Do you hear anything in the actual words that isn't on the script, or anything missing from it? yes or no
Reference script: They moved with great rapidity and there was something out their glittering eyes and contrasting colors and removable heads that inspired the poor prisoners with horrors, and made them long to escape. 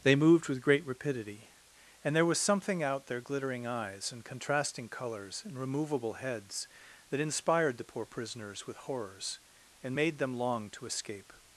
no